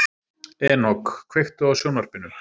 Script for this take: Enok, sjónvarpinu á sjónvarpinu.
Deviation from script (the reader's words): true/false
true